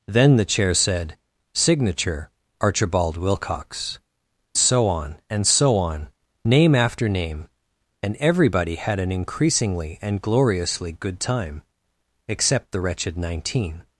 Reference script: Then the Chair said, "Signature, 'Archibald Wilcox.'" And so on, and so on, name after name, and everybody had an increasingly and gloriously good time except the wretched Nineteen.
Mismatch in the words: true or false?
true